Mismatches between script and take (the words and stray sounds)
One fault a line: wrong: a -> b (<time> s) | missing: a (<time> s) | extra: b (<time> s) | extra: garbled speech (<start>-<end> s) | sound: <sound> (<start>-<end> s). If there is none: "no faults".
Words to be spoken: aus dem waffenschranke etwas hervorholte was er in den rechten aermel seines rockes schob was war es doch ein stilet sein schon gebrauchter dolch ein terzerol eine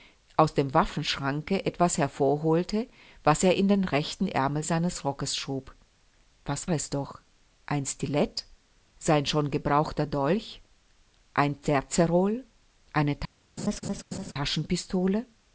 missing: war (6.7 s)
sound: laugh (13.6-14.3 s)